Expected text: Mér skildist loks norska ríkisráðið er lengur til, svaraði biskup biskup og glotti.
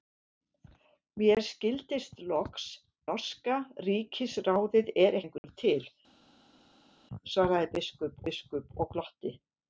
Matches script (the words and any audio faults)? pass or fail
pass